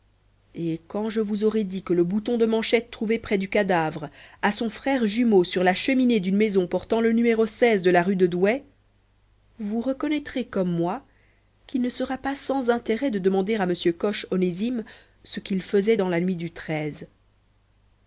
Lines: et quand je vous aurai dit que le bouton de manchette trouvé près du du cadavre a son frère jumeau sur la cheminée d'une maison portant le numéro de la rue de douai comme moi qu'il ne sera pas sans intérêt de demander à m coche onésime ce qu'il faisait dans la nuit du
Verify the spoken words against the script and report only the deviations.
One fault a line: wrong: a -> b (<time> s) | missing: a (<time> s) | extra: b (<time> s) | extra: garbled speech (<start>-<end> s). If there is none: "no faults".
missing: du (3.5 s)
extra: vous reconnaîtrez (9.6 s)